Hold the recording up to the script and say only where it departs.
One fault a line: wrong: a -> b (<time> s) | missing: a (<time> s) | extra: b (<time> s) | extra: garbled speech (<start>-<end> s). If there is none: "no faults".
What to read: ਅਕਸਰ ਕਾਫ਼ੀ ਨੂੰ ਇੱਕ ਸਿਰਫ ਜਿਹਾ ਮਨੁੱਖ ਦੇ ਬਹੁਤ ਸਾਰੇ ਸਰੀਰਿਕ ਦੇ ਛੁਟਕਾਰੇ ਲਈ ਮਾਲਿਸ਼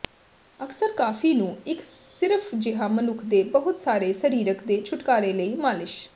no faults